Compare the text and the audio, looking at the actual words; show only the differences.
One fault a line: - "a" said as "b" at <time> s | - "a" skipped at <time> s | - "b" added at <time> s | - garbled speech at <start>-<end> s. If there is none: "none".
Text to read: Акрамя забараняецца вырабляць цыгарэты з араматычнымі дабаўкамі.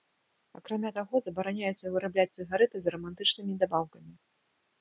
- "таго" added at 1.0 s